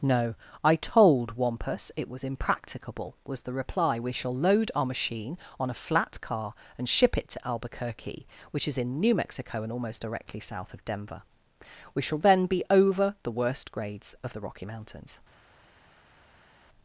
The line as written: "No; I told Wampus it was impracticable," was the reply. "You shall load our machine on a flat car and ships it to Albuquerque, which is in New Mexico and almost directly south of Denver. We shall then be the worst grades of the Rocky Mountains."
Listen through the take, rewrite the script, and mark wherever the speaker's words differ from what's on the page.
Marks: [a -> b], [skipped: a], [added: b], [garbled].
"No; I told Wampus it was impracticable," was the reply. ["You -> We] shall load our machine on a flat car and [ships -> ship] it to Albuquerque, which is in New Mexico and almost directly south of Denver. We shall then be [added: over] the worst grades of the Rocky Mountains."